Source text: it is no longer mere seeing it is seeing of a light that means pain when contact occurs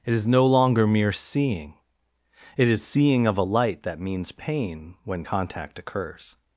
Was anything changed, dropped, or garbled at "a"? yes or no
no